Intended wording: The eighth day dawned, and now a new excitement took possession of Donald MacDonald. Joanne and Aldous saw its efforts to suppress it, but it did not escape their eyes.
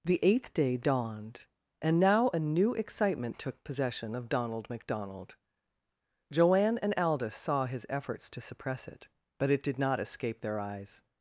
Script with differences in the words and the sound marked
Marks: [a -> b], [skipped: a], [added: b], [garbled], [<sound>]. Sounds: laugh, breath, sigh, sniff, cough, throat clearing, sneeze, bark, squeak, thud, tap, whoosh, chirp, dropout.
The eighth day dawned, and now a new excitement took possession of Donald MacDonald. Joanne and Aldous saw [its -> his] efforts to suppress it, but it did not escape their eyes.